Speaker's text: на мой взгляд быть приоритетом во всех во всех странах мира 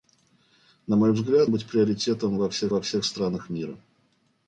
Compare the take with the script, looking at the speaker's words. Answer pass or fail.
pass